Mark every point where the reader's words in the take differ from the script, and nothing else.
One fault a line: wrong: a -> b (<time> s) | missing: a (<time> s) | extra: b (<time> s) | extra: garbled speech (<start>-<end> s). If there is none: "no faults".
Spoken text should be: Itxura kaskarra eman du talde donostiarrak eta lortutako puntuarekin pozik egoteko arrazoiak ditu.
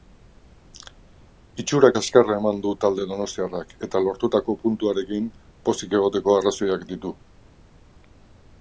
no faults